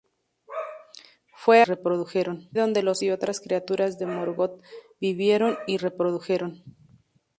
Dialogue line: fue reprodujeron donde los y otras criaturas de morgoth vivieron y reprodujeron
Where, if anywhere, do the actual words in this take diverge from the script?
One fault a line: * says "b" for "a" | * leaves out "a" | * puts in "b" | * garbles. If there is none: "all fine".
all fine